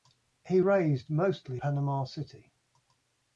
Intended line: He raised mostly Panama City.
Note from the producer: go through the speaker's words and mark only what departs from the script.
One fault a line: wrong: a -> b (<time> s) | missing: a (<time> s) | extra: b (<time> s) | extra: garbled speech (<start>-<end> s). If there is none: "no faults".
no faults